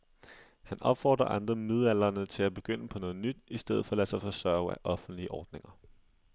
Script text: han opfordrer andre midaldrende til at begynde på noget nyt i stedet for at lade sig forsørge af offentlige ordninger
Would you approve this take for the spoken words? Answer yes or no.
yes